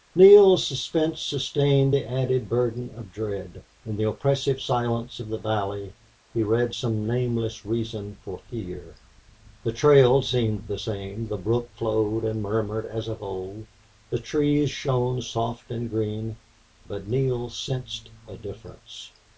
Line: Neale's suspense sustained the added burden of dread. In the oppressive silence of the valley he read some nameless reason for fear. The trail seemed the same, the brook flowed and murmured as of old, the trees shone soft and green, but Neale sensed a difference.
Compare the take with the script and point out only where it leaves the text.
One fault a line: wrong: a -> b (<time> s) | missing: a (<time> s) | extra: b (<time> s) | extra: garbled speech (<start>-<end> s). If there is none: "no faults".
no faults